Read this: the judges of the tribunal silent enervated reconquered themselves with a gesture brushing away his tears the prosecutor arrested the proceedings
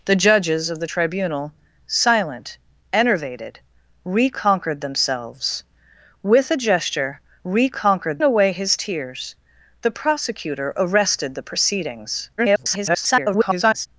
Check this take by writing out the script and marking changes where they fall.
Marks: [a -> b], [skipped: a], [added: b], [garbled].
the judges of the tribunal silent enervated reconquered themselves with a gesture [brushing -> reconquered] away his tears the prosecutor arrested the proceedings [garbled]